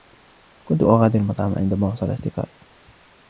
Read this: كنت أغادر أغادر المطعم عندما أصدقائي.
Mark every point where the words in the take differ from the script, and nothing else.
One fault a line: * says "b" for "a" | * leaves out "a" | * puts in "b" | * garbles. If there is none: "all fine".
* leaves out "أغادر"
* puts in "وصل"